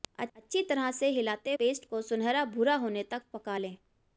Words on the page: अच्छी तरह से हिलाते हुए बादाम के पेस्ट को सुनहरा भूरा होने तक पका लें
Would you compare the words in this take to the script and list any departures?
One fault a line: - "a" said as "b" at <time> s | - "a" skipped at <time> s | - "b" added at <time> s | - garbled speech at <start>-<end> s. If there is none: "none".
- "हुए बादाम के" skipped at 1.5 s